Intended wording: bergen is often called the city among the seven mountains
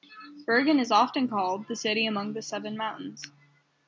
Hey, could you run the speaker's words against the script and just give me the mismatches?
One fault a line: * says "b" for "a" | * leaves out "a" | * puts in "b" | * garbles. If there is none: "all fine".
all fine